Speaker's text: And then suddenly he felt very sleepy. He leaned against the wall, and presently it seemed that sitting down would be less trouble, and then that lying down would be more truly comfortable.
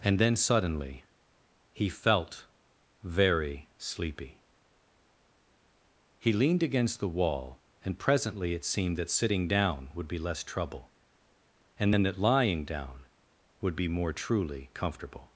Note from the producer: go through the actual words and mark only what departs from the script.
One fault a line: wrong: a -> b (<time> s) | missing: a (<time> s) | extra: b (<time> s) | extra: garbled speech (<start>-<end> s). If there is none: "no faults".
no faults